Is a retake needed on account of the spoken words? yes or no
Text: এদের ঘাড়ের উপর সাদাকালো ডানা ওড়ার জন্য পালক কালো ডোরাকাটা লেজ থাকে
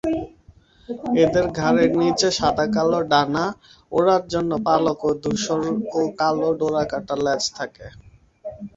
yes